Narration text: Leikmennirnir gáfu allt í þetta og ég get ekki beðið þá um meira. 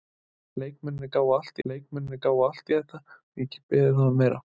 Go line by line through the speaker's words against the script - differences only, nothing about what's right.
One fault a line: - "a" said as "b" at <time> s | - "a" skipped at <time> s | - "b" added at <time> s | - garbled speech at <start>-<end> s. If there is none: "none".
- "leikmennirnir gáfu allt" added at 1.7 s
- "get" skipped at 3.5 s